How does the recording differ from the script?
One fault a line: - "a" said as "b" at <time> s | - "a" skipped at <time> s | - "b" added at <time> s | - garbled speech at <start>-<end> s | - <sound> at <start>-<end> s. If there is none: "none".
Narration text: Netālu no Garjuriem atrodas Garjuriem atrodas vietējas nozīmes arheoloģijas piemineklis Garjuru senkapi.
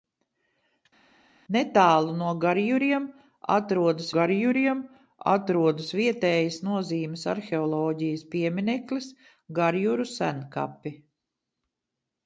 none